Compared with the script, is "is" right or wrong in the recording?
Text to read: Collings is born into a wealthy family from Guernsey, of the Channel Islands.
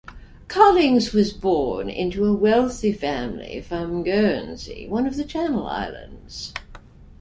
wrong